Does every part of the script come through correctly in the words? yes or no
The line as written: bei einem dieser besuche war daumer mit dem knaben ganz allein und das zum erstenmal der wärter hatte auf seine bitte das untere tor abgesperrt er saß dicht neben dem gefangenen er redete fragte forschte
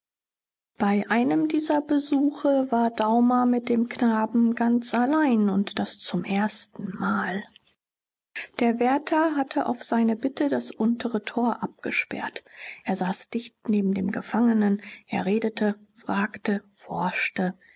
yes